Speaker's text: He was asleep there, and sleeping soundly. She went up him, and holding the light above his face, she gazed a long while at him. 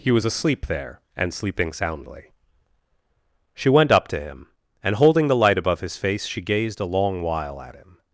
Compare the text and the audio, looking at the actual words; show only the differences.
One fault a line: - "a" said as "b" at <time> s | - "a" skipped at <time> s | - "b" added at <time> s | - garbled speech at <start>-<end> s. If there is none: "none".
- "to" added at 4.1 s